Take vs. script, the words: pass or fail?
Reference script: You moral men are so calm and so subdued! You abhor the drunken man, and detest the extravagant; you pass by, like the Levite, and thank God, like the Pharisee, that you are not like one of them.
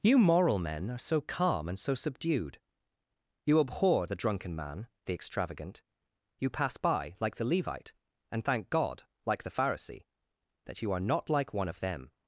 fail